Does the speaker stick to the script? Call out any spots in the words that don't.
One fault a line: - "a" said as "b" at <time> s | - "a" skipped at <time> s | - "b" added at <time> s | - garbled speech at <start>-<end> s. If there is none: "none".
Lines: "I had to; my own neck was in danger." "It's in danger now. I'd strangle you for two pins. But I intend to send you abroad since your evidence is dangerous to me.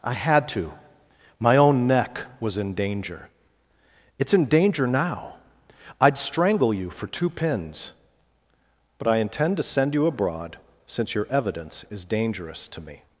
none